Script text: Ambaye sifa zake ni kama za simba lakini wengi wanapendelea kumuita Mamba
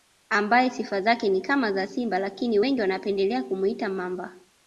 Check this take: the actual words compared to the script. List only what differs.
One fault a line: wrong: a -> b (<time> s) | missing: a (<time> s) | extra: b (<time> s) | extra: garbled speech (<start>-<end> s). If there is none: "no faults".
no faults